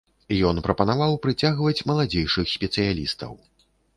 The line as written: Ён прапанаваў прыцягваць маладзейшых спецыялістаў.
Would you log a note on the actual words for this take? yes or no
no